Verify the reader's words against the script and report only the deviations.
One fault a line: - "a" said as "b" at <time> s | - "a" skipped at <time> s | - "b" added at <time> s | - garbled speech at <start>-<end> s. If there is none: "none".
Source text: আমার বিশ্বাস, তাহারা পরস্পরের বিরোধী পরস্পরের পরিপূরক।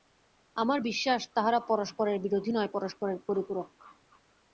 - "নয়" added at 2.5 s